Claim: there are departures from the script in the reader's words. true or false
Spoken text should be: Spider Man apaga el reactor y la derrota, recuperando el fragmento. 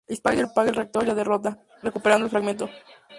true